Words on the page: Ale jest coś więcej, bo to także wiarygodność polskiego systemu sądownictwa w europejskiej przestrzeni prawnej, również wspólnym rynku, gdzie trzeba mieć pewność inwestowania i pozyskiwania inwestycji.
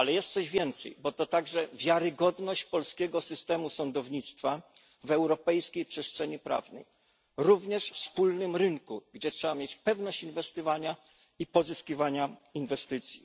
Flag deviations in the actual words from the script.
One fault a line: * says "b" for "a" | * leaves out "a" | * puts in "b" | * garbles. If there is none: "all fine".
all fine